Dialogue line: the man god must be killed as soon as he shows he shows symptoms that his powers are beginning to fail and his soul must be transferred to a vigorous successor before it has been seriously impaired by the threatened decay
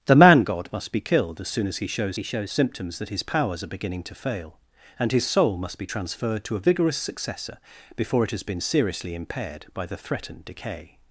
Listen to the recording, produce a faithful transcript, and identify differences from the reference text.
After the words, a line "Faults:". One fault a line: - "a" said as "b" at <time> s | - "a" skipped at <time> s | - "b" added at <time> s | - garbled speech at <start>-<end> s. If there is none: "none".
the man god must be killed as soon as he shows he shows symptoms that his powers are beginning to fail and his soul must be transferred to a vigorous successor before it has been seriously impaired by the threatened decay
Faults:
none